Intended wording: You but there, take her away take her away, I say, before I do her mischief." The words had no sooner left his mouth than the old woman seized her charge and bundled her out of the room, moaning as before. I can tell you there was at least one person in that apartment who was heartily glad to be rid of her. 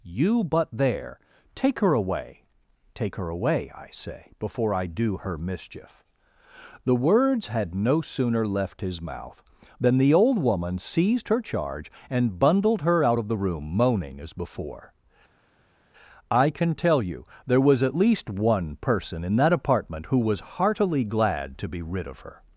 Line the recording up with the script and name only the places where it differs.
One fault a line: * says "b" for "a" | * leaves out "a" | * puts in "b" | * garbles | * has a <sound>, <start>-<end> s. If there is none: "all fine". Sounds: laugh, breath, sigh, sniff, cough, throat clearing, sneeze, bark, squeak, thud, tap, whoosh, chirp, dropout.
all fine